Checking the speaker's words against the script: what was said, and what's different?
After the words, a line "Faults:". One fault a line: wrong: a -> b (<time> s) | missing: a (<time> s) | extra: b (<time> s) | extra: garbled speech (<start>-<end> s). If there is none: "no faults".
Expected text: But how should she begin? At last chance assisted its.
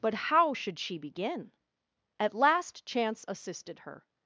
But how should she begin? At last chance assisted her.
Faults:
wrong: its -> her (3.8 s)